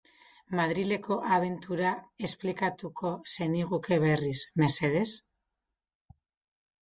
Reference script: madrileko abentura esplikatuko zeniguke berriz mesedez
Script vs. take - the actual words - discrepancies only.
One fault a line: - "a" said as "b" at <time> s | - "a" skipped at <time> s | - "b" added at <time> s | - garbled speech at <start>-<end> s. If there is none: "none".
none